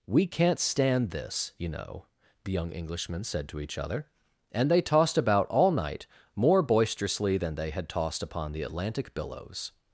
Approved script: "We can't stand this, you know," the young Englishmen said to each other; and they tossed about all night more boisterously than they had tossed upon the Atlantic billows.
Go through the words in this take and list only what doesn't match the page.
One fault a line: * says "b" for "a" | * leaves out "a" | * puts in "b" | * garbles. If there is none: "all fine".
all fine